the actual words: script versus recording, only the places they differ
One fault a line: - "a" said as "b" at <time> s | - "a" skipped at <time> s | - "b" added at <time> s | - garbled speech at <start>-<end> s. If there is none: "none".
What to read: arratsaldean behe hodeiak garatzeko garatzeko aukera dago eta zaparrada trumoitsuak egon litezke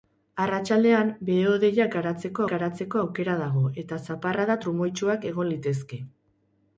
none